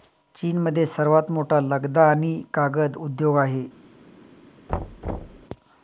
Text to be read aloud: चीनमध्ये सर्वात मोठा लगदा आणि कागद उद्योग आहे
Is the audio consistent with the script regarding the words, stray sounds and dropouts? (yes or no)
no